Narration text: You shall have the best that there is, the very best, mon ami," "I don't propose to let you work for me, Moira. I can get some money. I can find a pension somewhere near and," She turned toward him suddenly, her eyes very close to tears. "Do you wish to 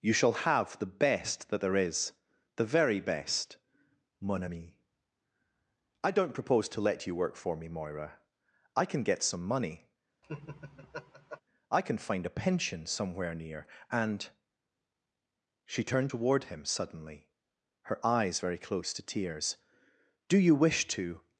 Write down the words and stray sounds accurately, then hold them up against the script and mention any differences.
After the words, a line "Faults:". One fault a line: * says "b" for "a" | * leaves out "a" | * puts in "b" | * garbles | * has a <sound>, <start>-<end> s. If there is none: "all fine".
You shall have the best that there is, the very best, mon ami," "I don't propose to let you work for me, Moira. I can get some money. I can find a pension somewhere near and," She turned toward him suddenly, her eyes very close to tears. "Do you wish to
Faults:
* has a laugh, 10.2-11.4 s